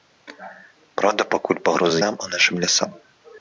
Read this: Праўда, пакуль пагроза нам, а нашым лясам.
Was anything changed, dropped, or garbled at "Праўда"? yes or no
no